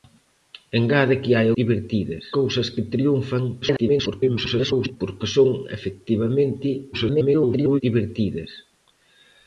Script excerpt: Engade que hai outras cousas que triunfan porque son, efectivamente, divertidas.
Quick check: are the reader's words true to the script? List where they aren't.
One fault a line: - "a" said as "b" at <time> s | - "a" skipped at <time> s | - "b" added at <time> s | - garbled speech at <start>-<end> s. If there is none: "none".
- "outras" said as "divertidas" at 1.6 s
- garbled speech at 3.6-5.0 s
- garbled speech at 6.9-7.8 s